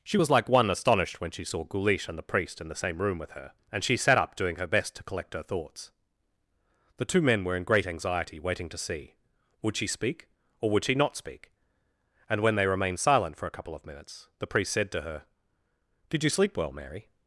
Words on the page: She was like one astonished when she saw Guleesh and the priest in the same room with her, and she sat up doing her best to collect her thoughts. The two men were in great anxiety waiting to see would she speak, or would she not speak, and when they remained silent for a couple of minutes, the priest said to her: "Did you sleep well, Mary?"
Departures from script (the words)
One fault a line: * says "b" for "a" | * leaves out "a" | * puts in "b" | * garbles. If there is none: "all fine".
all fine